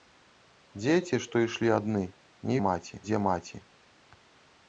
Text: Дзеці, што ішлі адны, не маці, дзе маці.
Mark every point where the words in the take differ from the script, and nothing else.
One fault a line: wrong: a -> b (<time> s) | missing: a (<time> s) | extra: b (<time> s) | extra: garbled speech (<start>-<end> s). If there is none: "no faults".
no faults